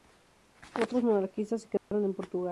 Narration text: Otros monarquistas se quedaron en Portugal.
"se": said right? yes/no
yes